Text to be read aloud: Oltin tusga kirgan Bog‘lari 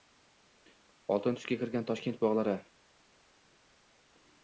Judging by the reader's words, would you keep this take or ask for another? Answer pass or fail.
fail